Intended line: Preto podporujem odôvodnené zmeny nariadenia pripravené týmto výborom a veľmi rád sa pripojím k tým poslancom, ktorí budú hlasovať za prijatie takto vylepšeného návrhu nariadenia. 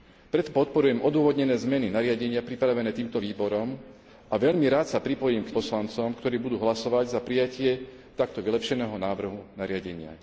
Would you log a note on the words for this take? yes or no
yes